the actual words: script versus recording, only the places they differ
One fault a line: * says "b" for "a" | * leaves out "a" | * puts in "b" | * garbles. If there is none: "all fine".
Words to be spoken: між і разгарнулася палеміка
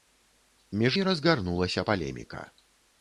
all fine